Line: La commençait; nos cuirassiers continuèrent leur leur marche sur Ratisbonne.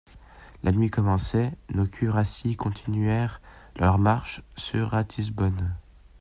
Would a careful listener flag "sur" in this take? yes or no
no